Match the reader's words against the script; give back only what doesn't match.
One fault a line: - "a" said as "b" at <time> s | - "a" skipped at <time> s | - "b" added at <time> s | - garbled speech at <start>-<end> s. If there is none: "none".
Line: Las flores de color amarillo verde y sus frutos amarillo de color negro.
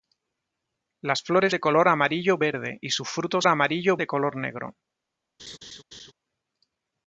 none